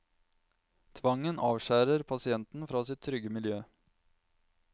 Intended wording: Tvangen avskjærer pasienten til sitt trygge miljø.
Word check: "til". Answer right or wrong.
wrong